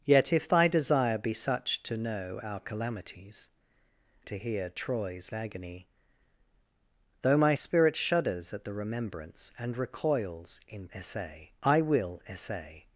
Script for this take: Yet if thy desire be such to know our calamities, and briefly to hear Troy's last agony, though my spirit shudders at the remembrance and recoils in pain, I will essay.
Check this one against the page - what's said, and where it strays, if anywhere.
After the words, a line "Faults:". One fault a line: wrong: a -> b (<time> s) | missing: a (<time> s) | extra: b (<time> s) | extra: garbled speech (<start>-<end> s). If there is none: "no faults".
Yet if thy desire be such to know our calamities, to hear Troy's agony, though my spirit shudders at the remembrance and recoils in essay, I will essay.
Faults:
missing: and briefly (3.5 s)
missing: last (5.3 s)
wrong: pain -> essay (10.9 s)